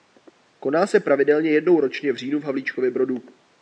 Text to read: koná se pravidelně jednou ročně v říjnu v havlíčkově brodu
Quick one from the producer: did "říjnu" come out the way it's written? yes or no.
yes